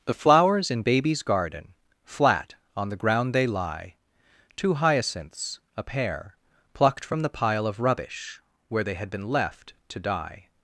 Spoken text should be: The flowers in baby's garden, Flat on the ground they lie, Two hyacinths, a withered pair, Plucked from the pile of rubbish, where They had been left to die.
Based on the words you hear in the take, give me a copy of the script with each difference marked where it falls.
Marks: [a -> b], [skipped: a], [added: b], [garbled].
The flowers in baby's garden, Flat on the ground they lie, Two hyacinths, a [skipped: withered] pair, Plucked from the pile of rubbish, where They had been left to die.